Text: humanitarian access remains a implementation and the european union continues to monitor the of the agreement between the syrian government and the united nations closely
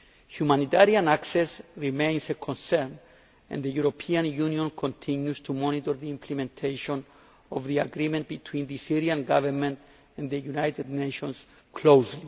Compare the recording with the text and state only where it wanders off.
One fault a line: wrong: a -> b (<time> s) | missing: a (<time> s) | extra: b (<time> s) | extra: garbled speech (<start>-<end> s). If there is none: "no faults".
wrong: implementation -> concern (2.4 s)
extra: implementation (6.1 s)